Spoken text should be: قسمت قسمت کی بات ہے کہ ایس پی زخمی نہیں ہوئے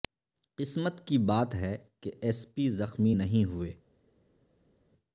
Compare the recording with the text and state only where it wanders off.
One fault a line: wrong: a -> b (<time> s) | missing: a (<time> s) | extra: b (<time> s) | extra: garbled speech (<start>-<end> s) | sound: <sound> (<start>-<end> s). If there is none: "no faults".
missing: قسمت (1.1 s)